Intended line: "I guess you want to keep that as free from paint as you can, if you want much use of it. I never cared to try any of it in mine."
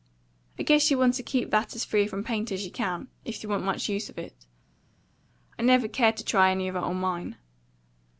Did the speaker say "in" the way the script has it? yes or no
no